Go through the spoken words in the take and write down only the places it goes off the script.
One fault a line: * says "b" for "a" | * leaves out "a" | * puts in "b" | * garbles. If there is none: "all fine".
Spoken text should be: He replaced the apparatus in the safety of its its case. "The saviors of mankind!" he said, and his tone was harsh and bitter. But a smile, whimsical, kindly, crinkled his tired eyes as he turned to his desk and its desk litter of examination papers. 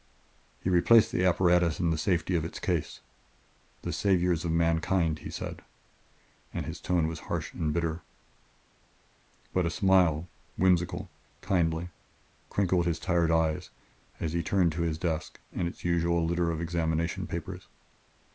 * leaves out "its"
* says "usual" for "desk"